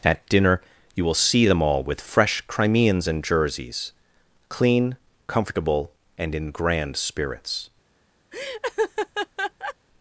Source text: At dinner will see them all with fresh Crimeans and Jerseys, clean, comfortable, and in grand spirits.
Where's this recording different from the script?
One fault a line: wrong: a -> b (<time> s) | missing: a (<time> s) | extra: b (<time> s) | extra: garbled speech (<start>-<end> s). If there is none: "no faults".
extra: you (0.9 s)